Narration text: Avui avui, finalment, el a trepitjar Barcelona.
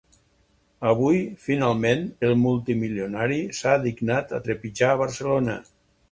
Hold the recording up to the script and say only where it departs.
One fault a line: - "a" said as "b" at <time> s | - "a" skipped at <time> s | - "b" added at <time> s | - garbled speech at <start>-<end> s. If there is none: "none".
- "avui" skipped at 1.2 s
- "multimilionari s'ha dignat" added at 2.4 s